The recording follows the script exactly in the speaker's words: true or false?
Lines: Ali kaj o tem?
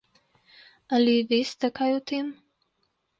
false